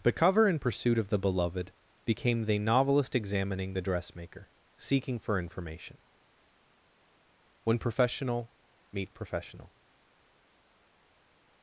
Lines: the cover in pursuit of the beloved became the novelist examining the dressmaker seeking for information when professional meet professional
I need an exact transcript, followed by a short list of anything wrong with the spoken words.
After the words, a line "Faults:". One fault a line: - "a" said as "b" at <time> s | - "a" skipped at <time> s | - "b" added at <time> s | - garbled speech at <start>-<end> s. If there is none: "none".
the cover in pursuit of the beloved became the novelist examining the dressmaker seeking for information when professional meet professional
Faults:
none